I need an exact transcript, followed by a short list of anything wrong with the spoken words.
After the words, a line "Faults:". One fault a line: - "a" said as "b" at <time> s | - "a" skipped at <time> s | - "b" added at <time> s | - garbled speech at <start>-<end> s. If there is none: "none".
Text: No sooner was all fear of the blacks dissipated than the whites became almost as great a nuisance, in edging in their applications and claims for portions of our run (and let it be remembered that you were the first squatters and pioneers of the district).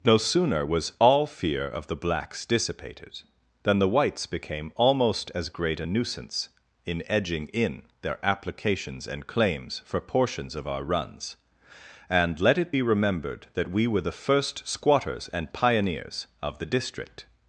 No sooner was all fear of the blacks dissipated than the whites became almost as great a nuisance, in edging in their applications and claims for portions of our runs (and let it be remembered that we were the first squatters and pioneers of the district).
Faults:
- "run" said as "runs" at 10.8 s
- "you" said as "we" at 13.7 s